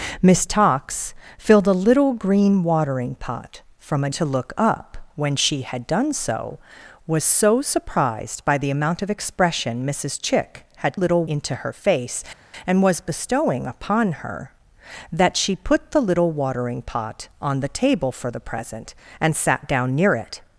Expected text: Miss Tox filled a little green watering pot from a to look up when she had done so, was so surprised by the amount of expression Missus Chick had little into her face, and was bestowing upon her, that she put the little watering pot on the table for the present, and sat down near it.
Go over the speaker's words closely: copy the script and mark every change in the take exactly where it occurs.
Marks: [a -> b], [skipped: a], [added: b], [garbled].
Miss Tox filled a little green watering pot from a to look up when she had done so, was so surprised by the amount of expression Missus Chick had little into her face, and was bestowing upon her, that she put the little watering pot on the table for the present, and sat down near it.